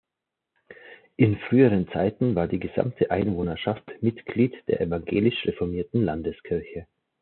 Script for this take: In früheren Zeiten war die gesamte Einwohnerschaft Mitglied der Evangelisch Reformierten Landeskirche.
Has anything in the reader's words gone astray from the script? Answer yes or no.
no